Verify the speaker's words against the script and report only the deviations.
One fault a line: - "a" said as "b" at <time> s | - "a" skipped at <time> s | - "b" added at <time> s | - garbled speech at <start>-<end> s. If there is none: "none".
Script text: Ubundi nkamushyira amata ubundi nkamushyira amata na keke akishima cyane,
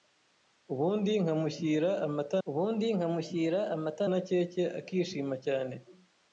none